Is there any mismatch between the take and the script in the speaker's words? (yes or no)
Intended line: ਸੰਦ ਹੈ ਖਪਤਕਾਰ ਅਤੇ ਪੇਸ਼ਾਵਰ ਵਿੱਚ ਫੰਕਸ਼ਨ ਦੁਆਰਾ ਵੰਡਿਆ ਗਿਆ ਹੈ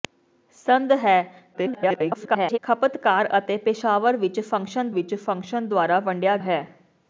yes